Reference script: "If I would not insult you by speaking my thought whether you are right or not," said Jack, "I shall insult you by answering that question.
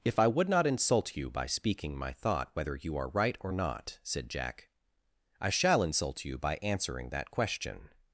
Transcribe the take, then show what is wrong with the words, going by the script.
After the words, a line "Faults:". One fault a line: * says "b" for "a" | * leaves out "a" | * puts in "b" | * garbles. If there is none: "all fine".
"If I would not insult you by speaking my thought whether you are right or not," said Jack, "I shall insult you by answering that question.
Faults:
all fine